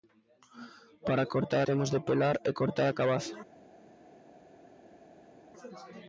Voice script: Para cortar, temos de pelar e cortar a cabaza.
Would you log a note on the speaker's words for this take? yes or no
no